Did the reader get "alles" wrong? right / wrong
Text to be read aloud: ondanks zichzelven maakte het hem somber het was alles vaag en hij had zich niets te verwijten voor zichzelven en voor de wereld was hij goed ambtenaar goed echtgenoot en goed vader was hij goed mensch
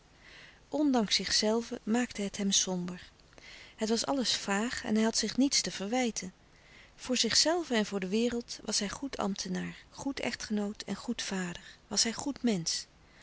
right